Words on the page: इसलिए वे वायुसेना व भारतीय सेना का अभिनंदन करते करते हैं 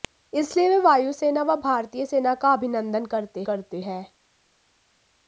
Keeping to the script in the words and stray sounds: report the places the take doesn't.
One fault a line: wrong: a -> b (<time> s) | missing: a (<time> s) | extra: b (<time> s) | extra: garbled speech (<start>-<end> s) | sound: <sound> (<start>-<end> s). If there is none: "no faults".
no faults